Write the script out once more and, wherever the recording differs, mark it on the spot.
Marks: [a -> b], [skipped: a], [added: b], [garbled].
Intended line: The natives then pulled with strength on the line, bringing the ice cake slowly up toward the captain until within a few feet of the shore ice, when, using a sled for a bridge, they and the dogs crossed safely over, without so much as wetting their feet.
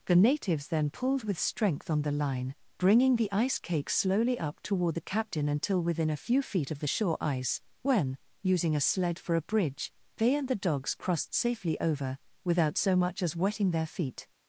The natives then pulled with strength on the line, bringing the ice cake slowly up toward the captain until within a few feet of the shore ice, when, using a sled for a bridge, they and the dogs crossed safely over, without so much as wetting their feet.